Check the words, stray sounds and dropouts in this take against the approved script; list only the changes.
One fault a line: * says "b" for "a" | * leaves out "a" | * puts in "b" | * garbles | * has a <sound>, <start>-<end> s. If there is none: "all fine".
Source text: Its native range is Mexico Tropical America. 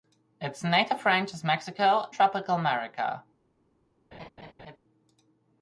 * has a laugh, 4.1-4.8 s